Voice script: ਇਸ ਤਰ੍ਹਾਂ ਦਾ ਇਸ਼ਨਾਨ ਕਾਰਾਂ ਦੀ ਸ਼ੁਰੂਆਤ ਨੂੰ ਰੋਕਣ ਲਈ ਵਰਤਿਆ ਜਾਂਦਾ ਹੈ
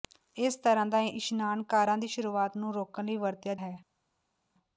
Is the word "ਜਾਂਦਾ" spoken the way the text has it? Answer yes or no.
no